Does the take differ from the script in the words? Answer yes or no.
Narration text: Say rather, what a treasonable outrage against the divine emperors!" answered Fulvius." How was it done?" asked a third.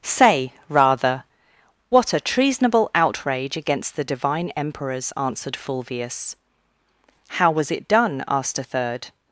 no